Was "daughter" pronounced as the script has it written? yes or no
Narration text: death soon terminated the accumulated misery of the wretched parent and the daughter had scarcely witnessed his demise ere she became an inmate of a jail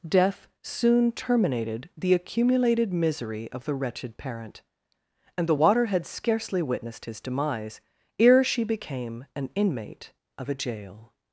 no